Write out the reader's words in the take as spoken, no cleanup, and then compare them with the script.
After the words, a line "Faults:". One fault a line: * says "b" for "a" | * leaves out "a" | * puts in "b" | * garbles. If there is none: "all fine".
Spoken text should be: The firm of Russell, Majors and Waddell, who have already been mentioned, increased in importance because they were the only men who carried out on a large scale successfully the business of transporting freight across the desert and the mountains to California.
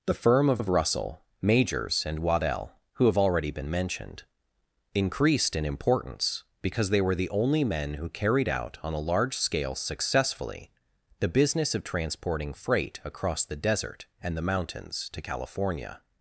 The firm of of Russell, Majors and Waddell, who have already been mentioned, increased in importance because they were the only men who carried out on a large scale successfully the business of transporting freight across the desert and the mountains to California.
Faults:
* puts in "of"